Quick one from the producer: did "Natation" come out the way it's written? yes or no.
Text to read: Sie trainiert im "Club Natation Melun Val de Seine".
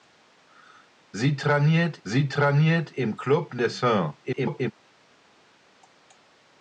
no